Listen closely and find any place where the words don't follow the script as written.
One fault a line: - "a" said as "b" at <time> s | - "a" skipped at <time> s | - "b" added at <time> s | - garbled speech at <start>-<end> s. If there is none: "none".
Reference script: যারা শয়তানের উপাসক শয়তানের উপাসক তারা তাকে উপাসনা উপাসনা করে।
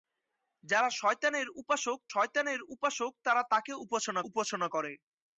none